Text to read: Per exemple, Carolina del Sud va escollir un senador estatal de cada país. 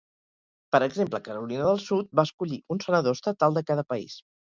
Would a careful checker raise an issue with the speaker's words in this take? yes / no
no